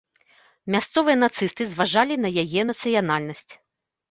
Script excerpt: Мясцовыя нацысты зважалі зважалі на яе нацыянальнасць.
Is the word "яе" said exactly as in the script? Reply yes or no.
yes